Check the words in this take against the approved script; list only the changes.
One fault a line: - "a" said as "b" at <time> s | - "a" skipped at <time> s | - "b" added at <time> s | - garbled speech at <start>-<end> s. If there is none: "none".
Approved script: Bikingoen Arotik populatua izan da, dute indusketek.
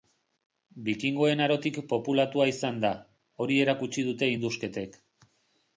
- "hori erakutsi" added at 3.5 s